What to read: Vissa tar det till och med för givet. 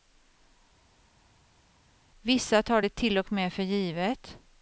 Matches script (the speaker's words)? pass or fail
pass